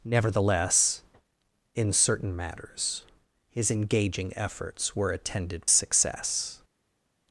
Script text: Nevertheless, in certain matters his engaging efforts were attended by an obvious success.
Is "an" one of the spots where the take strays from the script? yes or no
yes